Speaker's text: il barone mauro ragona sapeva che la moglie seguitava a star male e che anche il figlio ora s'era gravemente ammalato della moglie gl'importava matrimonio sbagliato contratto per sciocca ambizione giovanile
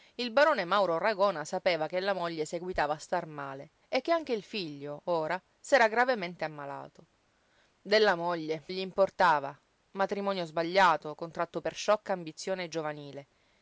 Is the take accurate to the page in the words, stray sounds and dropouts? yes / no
yes